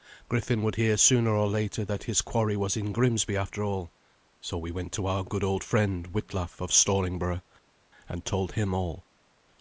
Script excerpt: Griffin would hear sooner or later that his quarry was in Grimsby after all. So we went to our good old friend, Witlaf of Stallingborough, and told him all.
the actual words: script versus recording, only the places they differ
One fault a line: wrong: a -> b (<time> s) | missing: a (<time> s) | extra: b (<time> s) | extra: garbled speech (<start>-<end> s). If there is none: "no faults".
no faults